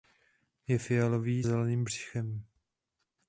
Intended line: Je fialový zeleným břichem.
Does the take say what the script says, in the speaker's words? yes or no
yes